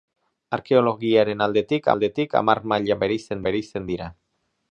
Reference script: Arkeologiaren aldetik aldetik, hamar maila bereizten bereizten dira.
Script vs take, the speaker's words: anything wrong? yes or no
no